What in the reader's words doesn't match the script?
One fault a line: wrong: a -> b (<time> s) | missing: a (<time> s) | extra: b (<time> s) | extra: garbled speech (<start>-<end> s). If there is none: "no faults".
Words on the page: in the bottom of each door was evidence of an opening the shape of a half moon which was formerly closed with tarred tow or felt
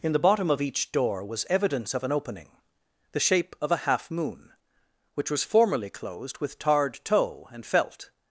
wrong: or -> and (7.5 s)